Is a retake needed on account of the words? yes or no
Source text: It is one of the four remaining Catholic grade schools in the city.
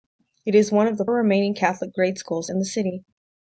yes